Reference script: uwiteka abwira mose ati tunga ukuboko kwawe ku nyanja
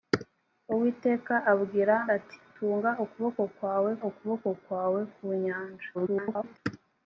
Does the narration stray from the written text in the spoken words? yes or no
yes